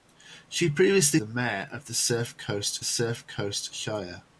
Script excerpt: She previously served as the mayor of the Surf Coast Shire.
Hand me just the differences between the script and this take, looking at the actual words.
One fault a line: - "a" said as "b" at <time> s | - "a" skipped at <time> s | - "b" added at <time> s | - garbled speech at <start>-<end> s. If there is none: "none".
- "served as" skipped at 1.2 s
- "Surf Coast" added at 2.8 s